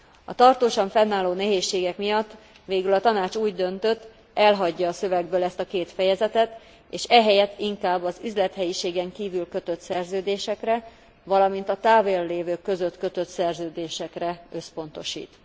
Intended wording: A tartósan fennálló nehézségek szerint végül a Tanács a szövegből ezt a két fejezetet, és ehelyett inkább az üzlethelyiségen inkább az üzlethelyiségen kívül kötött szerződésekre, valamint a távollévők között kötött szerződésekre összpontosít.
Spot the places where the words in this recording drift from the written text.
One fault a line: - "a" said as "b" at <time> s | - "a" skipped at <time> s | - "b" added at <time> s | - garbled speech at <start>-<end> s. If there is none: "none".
- "szerint" said as "miatt" at 2.0 s
- "úgy döntött elhagyja" added at 3.3 s
- "inkább az üzlethelyiségen" skipped at 9.1 s